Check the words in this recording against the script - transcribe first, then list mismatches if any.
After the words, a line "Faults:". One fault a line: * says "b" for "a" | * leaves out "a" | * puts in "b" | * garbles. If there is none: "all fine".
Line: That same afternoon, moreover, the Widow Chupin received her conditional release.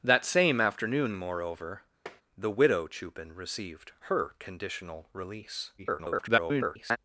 That same afternoon, moreover, the Widow Chupin received her conditional release. [garbled]
Faults:
* garbles